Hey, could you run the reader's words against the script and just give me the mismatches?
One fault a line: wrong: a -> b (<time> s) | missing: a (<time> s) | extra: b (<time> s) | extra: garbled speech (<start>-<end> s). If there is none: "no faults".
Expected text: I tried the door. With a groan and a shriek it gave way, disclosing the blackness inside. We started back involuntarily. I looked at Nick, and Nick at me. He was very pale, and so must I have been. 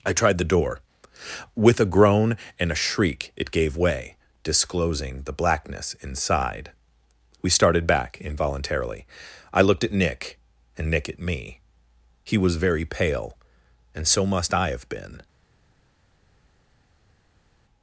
no faults